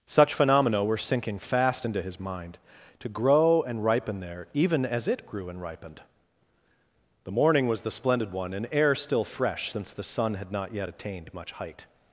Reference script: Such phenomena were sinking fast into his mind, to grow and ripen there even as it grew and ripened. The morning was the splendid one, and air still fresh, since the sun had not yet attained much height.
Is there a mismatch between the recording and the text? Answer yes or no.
no